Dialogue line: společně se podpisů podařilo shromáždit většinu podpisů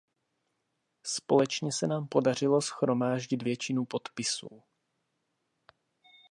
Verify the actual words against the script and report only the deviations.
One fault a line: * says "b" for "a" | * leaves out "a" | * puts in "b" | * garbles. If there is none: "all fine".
* says "nám" for "podpisů"